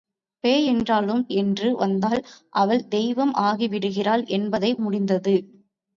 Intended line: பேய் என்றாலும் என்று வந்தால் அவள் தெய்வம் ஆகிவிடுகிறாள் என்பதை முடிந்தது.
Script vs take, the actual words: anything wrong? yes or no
no